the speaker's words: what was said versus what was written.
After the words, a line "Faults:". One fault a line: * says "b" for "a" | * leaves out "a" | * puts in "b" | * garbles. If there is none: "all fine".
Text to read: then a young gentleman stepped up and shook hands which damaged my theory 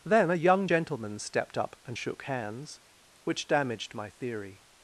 then a young gentleman stepped up and shook hands which damaged my theory
Faults:
all fine